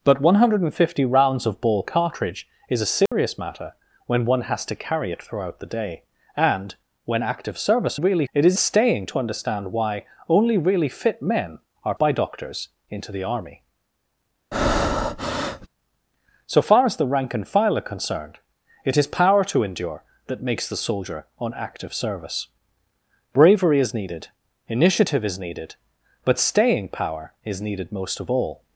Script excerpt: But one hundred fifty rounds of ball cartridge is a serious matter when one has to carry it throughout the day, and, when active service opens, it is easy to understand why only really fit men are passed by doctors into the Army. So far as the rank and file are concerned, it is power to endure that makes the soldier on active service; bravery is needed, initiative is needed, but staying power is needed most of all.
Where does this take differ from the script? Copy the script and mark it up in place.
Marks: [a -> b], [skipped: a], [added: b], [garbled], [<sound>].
But one hundred fifty rounds of ball cartridge is a serious [dropout] matter when one has to carry it throughout the day, and, when active service [opens, -> really] it is [easy -> staying] to understand why only really fit men are [skipped: passed] by doctors into the Army. [breath] So far as the rank and file are concerned, it is power to endure that makes the soldier on active service; bravery is needed, initiative is needed, but staying power is needed most of all.